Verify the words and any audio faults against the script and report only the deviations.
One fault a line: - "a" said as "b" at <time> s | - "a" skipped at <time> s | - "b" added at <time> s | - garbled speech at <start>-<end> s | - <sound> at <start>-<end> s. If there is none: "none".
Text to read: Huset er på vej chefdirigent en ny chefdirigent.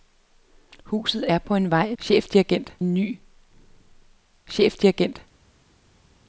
none